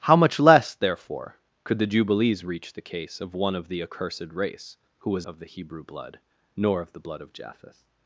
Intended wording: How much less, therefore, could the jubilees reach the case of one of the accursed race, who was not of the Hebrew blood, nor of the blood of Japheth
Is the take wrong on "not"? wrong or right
wrong